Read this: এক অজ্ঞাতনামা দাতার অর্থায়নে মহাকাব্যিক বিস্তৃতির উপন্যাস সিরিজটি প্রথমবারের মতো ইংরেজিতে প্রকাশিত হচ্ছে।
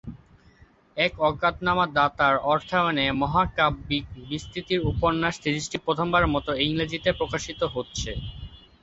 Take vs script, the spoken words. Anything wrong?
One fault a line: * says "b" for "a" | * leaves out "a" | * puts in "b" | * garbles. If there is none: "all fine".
all fine